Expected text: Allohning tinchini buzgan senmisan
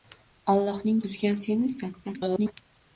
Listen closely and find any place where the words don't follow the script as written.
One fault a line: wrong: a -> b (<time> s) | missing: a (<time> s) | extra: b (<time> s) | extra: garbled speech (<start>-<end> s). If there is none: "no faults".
missing: tinchini (1.0 s)
extra: garbled speech (2.0-2.5 s)